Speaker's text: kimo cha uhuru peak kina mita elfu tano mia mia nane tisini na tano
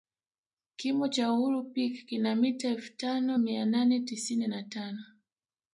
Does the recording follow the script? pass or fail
fail